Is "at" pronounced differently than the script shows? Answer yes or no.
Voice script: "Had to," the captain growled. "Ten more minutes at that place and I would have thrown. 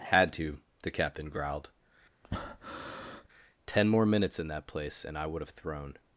yes